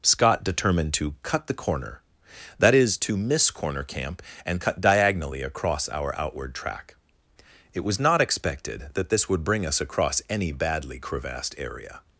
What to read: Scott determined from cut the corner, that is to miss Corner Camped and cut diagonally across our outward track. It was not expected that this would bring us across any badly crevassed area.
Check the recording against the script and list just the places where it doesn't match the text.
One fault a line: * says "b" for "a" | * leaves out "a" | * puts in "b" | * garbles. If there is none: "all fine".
* says "to" for "from"
* says "Camp" for "Camped"